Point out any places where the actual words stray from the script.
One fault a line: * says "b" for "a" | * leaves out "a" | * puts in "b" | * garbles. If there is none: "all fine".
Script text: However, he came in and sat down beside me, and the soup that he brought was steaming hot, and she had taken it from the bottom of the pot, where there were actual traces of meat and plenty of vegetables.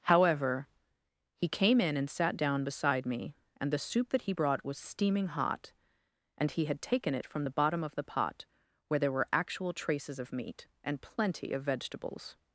* says "he" for "she"